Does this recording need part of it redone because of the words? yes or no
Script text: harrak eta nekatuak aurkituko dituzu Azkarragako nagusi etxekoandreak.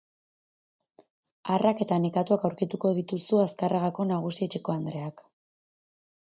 no